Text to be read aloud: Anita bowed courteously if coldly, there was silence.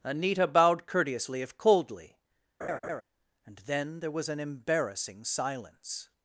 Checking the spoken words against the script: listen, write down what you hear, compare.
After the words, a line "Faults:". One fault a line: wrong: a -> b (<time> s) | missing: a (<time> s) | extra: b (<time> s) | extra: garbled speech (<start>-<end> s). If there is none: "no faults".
Anita bowed courteously if coldly, and then there was an embarrassing silence.
Faults:
extra: and then (3.5 s)
extra: an embarrassing (4.3 s)